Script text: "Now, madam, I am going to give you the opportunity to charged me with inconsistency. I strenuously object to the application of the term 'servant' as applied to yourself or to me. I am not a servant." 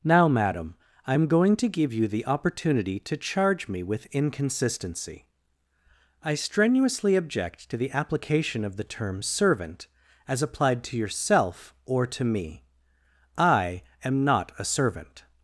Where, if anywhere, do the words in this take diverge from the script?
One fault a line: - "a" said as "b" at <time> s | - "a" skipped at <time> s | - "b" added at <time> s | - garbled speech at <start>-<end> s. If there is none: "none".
- "charged" said as "charge" at 3.2 s